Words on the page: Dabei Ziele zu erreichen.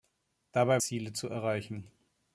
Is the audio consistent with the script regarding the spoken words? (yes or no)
yes